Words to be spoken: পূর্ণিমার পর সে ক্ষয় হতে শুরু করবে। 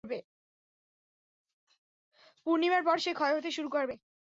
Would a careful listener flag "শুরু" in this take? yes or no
no